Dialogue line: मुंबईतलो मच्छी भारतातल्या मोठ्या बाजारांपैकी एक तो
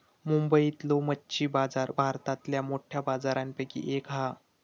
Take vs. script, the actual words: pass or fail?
fail